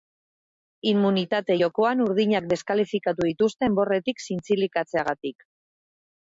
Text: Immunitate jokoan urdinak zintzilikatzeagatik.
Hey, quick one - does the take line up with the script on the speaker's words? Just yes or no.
no